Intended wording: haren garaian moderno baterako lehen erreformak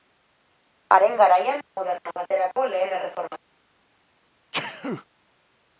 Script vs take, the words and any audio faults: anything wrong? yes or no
yes